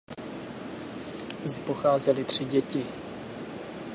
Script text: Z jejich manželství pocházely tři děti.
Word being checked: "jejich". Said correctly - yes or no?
no